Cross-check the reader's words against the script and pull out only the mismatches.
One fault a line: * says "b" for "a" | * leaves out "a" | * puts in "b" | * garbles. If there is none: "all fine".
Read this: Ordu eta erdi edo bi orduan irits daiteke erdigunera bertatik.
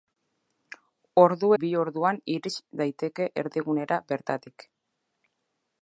* leaves out "eta erdi edo"